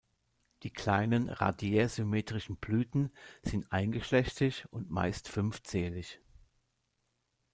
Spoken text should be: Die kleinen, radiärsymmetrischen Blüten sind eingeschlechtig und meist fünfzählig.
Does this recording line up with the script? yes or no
yes